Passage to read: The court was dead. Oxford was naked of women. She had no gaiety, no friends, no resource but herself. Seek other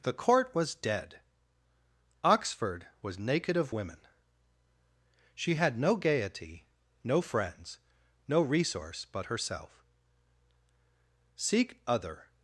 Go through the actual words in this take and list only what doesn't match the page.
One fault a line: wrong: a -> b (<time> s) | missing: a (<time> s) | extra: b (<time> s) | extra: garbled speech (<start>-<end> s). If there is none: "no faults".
no faults